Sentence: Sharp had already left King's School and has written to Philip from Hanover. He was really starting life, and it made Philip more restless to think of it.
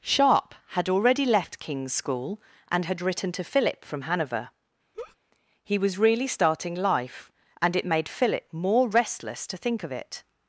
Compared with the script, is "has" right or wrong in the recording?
wrong